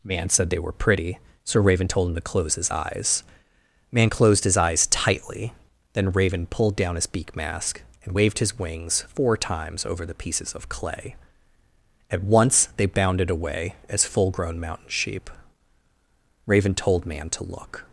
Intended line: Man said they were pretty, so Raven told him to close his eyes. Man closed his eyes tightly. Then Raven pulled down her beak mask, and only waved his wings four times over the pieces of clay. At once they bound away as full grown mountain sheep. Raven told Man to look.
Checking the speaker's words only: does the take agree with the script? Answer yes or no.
no